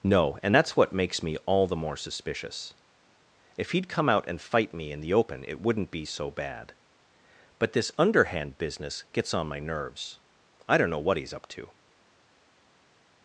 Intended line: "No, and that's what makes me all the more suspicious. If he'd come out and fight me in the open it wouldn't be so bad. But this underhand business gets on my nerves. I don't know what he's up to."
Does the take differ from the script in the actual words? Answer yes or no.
no